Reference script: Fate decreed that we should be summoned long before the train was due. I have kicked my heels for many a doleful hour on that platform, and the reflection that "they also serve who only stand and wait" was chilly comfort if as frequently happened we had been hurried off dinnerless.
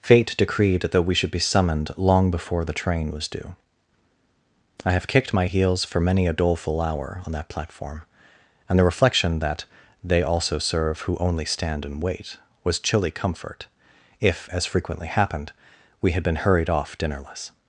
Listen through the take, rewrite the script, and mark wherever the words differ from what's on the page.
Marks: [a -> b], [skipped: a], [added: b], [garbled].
Fate decreed that we should be summoned long before the train was due. I have kicked my heels for many a doleful hour on that platform, and the reflection that "they also serve who only stand and wait" was chilly comfort if as frequently happened we had been hurried off dinnerless.